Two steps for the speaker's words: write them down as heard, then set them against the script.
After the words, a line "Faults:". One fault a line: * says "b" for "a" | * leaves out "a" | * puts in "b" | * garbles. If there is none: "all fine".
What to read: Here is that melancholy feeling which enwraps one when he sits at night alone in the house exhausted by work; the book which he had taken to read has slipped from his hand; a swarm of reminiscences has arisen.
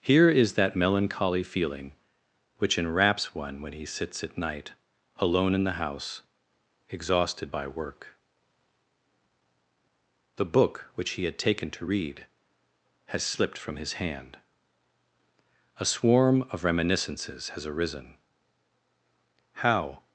Here is that melancholy feeling which enwraps one when he sits at night alone in the house exhausted by work; the book which he had taken to read has slipped from his hand; a swarm of reminiscences has arisen. How
Faults:
* puts in "How"